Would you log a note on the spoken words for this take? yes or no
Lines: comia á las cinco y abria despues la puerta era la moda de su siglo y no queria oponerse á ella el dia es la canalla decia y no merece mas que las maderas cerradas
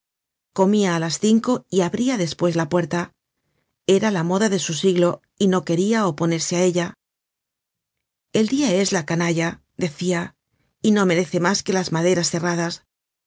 no